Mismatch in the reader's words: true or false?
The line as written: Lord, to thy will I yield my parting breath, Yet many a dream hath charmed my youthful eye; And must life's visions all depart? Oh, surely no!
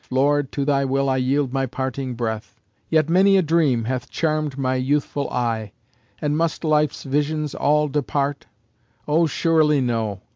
false